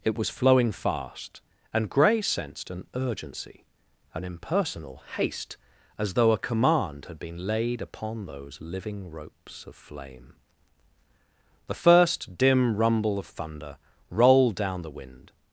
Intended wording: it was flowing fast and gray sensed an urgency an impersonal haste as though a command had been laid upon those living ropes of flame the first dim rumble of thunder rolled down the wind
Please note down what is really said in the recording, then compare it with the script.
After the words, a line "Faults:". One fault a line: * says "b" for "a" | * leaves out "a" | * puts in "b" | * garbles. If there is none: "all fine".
it was flowing fast and gray sensed an urgency an impersonal haste as though a command had been laid upon those living ropes of flame the first dim rumble of thunder rolled down the wind
Faults:
all fine